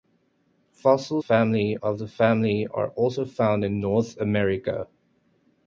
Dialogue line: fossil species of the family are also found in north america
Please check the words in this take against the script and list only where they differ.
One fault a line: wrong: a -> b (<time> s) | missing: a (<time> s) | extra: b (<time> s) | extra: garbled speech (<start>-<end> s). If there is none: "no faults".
wrong: species -> family (1.2 s)